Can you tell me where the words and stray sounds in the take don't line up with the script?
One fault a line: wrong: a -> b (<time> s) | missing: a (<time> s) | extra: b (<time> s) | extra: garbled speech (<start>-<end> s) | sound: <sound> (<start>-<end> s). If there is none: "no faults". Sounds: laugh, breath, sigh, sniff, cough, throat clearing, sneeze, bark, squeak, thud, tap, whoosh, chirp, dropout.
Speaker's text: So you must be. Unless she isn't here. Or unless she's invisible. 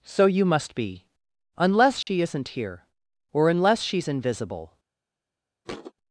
sound: dropout (2.0-2.1 s)
sound: thud (5.6-5.9 s)